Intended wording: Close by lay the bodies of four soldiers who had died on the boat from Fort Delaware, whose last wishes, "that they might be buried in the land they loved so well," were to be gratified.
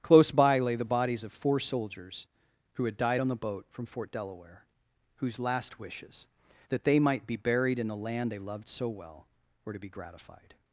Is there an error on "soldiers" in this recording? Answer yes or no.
no